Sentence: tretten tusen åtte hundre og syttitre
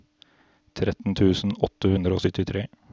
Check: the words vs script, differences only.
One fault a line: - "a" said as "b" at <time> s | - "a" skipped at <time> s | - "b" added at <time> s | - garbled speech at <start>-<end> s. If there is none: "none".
none